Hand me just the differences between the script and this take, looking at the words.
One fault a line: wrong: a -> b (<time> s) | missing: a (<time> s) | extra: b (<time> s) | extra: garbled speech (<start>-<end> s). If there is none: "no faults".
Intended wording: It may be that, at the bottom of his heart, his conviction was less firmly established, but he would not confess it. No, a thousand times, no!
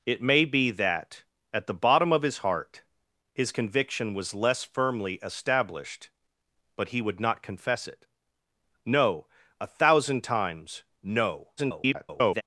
extra: garbled speech (11.6-12.4 s)